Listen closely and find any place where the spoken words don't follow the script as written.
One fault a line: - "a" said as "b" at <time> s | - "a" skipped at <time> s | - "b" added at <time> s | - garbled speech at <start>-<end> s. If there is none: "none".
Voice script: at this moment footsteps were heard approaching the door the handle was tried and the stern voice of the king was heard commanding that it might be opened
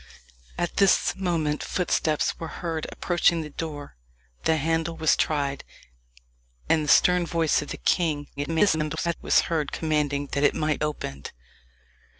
- garbled speech at 8.4-9.2 s
- "be" skipped at 10.8 s